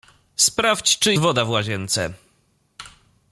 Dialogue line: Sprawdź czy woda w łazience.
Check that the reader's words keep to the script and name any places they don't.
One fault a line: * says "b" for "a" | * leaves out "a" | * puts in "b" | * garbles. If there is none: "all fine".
all fine